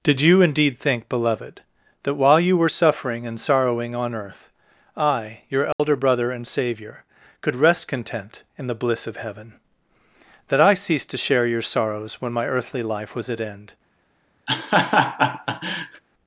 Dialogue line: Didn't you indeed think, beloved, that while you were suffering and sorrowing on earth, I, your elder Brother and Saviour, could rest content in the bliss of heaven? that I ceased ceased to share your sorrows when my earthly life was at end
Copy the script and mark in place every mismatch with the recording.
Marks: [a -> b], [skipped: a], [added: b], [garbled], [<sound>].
[Didn't -> Did] you indeed think, beloved, that while you were suffering and sorrowing on earth, I, your elder [dropout] Brother and Saviour, could rest content in the bliss of heaven? that I ceased [skipped: ceased] to share your sorrows when my earthly life was at end [laugh]